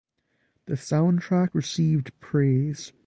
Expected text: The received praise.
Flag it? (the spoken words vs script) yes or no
yes